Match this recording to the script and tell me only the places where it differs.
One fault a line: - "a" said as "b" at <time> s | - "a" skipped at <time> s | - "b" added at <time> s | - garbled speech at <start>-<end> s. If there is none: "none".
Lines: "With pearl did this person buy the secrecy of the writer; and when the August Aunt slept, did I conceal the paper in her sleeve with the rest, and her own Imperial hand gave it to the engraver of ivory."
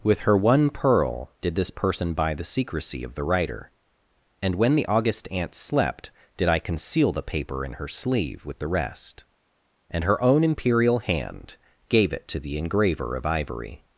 - "her one" added at 0.2 s